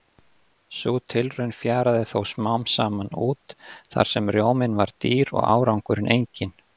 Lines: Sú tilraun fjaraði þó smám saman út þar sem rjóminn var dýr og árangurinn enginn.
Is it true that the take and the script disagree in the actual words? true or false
false